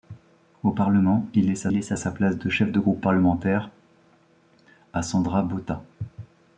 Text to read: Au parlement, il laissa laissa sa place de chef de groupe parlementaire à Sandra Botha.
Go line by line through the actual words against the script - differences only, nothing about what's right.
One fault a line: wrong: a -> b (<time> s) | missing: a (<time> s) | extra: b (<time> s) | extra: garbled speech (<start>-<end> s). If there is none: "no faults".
no faults